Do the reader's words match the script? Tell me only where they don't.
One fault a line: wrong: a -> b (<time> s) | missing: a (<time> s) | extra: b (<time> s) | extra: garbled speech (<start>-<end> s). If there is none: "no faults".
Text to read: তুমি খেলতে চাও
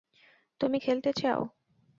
no faults